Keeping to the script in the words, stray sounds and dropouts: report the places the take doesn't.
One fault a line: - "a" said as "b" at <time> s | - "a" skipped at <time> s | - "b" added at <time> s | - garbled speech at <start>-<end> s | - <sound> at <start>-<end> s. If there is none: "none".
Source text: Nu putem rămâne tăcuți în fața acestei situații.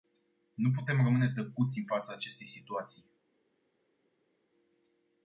none